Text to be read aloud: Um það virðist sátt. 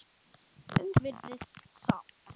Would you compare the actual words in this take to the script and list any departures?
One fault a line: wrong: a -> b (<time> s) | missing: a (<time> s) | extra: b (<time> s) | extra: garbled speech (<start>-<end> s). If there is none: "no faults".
missing: það (0.9 s)